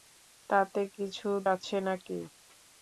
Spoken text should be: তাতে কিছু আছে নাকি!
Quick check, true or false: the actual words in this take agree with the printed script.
true